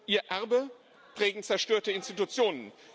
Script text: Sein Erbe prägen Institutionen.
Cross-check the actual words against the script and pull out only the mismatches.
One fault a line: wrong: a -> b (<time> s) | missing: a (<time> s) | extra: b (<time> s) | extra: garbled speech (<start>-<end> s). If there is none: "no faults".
wrong: Sein -> Ihr (0.1 s)
extra: zerstörte (1.4 s)